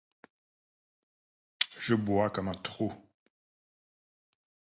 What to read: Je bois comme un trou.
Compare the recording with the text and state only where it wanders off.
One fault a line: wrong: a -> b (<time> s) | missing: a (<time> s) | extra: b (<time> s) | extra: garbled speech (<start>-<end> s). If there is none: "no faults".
no faults